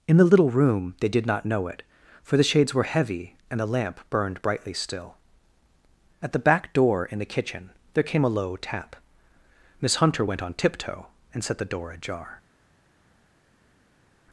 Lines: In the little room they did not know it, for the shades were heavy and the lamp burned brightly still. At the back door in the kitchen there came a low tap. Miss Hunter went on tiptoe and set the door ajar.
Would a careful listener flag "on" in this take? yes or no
no